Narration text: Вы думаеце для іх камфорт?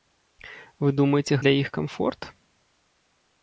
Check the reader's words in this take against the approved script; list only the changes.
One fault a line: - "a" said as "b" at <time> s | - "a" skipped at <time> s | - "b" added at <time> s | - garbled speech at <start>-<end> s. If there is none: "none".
none